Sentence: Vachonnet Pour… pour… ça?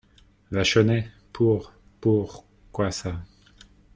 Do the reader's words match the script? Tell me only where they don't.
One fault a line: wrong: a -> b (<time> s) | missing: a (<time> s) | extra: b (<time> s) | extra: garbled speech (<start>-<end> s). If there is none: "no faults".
extra: quoi (2.7 s)